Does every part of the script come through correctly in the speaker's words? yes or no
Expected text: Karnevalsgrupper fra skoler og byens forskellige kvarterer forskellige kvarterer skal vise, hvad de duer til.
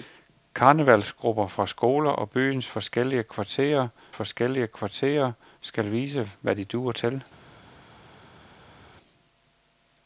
yes